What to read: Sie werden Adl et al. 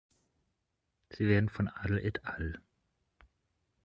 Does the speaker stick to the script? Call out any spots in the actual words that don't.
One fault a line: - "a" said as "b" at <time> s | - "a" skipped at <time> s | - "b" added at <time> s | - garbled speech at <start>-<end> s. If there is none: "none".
- "von" added at 1.5 s